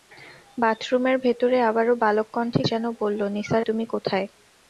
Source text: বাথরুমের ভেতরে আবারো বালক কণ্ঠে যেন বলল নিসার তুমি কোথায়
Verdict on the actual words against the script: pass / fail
pass